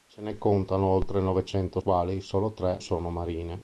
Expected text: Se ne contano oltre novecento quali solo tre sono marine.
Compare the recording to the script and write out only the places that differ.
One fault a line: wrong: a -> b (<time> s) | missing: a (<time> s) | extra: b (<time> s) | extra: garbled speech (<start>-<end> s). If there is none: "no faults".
no faults